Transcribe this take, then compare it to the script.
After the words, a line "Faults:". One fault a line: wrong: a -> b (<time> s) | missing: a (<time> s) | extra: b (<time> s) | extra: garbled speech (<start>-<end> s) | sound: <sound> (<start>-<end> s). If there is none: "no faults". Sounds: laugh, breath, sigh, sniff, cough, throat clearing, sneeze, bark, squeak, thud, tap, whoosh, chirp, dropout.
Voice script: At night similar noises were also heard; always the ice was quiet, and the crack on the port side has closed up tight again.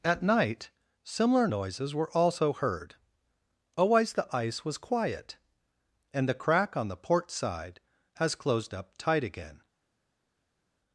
At night similar noises were also heard; always the ice was quiet, and the crack on the port side has closed up tight again.
Faults:
no faults